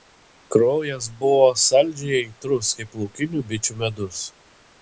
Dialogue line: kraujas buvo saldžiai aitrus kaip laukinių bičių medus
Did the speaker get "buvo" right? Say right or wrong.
right